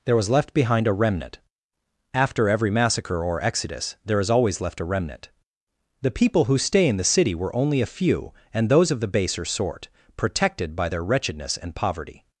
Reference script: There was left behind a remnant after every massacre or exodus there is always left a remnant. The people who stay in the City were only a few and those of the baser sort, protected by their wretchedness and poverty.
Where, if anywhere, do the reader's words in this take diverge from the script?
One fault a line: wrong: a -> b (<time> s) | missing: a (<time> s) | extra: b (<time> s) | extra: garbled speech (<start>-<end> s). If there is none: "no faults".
no faults